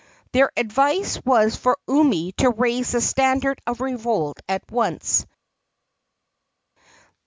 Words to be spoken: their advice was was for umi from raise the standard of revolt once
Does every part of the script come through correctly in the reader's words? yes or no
no